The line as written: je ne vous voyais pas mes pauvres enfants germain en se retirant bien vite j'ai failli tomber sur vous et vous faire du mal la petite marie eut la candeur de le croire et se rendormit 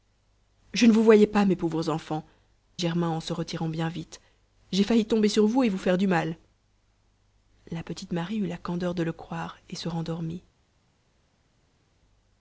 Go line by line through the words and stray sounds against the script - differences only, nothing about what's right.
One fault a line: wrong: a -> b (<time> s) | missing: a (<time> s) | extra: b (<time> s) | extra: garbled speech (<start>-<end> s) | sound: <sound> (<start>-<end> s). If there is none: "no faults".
no faults